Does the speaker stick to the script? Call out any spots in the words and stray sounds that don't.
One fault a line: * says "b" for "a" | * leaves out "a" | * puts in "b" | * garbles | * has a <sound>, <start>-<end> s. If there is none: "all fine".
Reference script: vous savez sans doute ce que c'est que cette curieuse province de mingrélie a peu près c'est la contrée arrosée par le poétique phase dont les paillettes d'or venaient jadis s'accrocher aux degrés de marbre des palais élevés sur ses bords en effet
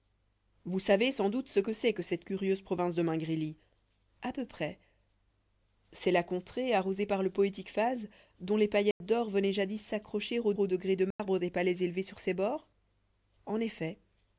* has a dropout, 8.9-9.0 s
* puts in "aux"
* has a dropout, 11.1-11.2 s